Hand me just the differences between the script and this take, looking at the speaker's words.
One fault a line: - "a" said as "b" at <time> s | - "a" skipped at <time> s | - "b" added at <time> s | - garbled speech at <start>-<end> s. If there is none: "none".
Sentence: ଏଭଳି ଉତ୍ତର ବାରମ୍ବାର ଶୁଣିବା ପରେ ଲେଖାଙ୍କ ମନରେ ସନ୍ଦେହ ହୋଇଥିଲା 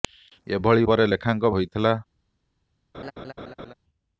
- "ଉତ୍ତର ବାରମ୍ବାର ଶୁଣିବା" skipped at 0.9 s
- "ମନରେ ସନ୍ଦେହ" skipped at 1.5 s